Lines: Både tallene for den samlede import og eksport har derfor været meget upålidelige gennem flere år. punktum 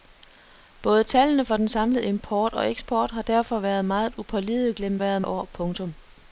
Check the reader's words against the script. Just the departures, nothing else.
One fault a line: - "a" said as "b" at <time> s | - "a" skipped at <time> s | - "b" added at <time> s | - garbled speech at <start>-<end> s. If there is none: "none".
- "flere" said as "været" at 5.0 s